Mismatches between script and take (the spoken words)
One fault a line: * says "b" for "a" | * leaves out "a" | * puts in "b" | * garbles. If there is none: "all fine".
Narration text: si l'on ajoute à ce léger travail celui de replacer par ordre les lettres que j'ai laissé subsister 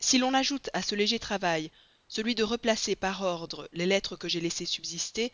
all fine